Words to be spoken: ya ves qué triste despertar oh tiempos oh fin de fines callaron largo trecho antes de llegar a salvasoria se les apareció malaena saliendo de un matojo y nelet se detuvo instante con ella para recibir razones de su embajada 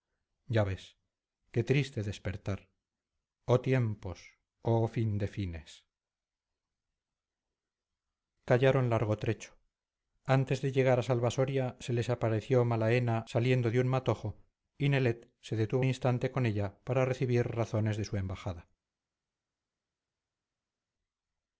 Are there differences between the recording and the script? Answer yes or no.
no